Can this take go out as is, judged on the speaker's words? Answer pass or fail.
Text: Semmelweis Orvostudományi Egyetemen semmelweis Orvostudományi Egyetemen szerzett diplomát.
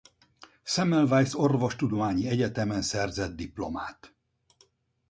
fail